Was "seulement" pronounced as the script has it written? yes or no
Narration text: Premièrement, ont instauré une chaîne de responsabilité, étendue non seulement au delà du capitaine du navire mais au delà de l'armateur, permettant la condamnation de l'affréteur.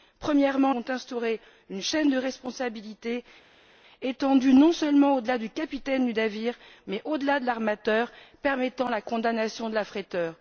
yes